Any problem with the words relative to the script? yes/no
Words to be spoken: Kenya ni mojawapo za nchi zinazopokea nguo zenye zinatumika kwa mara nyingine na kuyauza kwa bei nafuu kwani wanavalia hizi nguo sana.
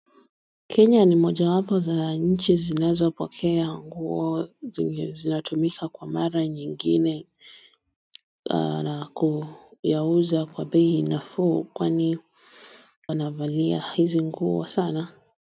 no